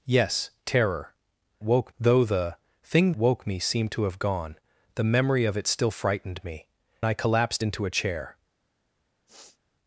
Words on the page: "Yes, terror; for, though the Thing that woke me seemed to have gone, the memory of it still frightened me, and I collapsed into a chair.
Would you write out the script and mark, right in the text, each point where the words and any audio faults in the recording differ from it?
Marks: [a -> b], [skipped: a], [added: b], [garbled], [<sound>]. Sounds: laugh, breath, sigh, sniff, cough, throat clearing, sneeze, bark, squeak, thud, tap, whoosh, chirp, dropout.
"Yes, terror; [for, -> woke] though the Thing [skipped: that] woke me seemed to have gone, the memory of it still frightened me, [skipped: and] I collapsed into a chair. [sniff]